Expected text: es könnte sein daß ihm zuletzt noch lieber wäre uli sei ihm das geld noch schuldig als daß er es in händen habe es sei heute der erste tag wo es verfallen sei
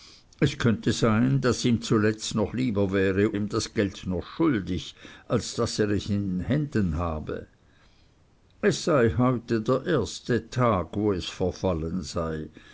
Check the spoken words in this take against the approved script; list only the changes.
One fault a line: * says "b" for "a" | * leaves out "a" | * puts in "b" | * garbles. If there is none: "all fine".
* leaves out "uli sei"